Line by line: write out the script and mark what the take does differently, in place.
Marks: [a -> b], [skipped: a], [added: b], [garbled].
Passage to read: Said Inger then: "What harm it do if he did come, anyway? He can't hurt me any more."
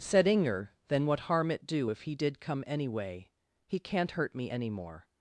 Said Inger then: "What harm it do if he did come, anyway? He can't hurt me any more."